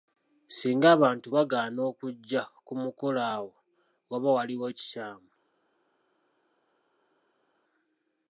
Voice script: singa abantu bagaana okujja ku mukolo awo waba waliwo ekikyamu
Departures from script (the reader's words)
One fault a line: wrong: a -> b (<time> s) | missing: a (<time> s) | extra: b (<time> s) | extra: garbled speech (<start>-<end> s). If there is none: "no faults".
no faults